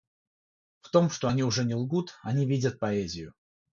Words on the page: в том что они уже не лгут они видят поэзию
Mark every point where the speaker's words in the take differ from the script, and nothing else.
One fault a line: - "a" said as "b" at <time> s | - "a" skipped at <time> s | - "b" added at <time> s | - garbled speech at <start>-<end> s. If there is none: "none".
none